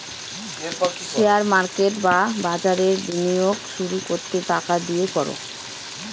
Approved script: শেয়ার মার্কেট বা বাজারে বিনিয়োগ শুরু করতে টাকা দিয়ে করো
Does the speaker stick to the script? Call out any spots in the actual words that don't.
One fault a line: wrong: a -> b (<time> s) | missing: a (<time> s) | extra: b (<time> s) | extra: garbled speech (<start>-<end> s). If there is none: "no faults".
no faults